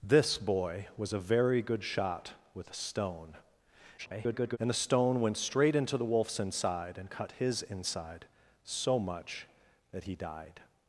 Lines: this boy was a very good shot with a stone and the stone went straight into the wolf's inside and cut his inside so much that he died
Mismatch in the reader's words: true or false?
true